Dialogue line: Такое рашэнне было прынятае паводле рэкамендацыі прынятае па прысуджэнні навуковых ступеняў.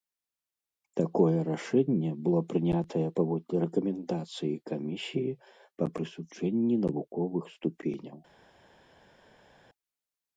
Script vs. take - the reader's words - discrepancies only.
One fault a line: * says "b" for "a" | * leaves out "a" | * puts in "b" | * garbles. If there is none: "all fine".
* says "камісіі" for "прынятае"